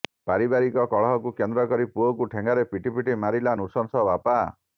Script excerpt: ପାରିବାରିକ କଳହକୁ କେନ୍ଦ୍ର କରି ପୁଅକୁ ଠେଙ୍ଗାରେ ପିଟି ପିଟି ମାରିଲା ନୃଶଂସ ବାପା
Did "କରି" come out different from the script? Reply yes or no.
no